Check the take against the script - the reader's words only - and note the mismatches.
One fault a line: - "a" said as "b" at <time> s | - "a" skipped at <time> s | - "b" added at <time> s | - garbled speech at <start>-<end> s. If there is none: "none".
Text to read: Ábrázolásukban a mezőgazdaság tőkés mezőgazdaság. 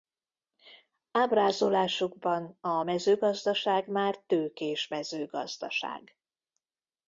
- "már" added at 3.9 s